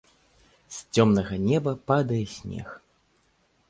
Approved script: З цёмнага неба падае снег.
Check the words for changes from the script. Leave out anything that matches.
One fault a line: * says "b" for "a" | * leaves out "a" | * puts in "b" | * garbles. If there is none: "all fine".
all fine